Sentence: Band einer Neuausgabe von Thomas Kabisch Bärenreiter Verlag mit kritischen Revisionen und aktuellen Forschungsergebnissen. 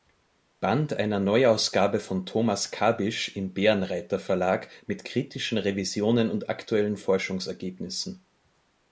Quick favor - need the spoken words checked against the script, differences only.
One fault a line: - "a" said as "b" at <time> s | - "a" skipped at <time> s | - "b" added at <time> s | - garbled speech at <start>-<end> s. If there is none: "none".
- "im" added at 3.4 s